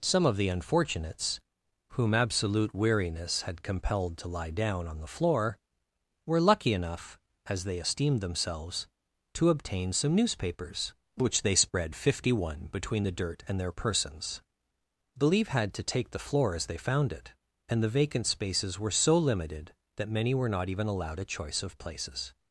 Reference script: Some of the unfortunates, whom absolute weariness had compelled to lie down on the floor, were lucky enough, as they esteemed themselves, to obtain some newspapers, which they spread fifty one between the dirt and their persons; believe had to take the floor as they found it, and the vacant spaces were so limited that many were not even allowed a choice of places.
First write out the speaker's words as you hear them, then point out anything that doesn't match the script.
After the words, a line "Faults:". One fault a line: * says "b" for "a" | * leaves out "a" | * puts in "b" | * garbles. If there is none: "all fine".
Some of the unfortunates, whom absolute weariness had compelled to lie down on the floor, were lucky enough, as they esteemed themselves, to obtain some newspapers, which they spread fifty one between the dirt and their persons; believe had to take the floor as they found it, and the vacant spaces were so limited that many were not even allowed a choice of places.
Faults:
all fine